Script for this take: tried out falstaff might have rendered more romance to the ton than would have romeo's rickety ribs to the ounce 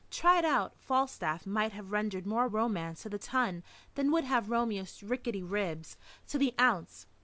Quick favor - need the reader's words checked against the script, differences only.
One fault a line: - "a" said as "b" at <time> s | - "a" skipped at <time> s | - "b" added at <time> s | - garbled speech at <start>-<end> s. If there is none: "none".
none